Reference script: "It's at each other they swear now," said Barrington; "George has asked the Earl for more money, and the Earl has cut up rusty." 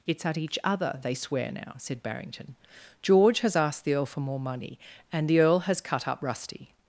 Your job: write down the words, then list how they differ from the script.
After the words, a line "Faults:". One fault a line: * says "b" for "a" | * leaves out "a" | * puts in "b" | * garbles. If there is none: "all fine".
"It's at each other they swear now," said Barrington; "George has asked the Earl for more money, and the Earl has cut up rusty."
Faults:
all fine